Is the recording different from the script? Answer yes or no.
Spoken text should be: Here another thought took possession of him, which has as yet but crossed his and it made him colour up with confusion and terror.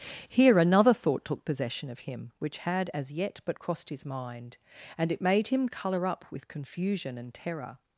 yes